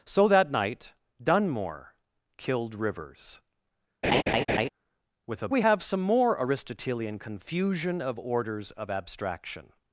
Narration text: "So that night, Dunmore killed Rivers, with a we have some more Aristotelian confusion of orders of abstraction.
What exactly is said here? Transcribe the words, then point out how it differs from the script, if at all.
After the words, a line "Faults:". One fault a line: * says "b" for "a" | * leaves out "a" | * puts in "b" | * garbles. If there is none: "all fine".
"So that night, Dunmore killed Rivers, with a we have some more Aristotelian confusion of orders of abstraction.
Faults:
all fine